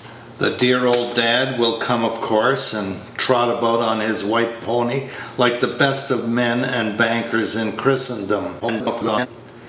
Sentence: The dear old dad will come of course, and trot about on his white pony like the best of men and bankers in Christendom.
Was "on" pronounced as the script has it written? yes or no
yes